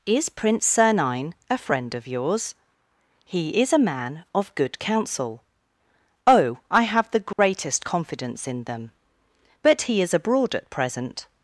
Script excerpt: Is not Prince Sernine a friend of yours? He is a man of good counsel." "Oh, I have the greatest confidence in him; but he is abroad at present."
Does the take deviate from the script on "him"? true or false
true